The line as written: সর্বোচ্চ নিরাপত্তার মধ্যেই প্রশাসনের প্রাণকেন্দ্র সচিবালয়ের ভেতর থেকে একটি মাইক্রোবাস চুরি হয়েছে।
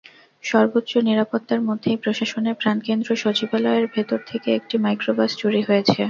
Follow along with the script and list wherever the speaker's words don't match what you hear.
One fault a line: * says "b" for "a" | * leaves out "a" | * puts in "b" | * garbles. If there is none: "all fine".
all fine